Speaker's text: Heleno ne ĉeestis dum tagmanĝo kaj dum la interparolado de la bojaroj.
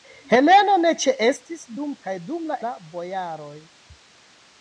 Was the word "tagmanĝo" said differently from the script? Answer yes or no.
yes